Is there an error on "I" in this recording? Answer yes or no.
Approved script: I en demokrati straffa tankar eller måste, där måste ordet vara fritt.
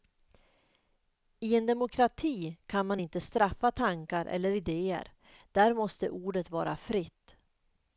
no